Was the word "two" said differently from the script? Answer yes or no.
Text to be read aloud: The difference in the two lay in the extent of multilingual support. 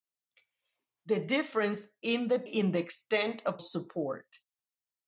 yes